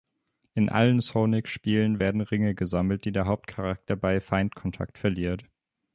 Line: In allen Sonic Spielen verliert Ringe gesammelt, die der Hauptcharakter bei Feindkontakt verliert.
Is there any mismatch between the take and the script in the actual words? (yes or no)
yes